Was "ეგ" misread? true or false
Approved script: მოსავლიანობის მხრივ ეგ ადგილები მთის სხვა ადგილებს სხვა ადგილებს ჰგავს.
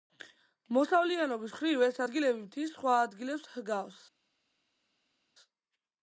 true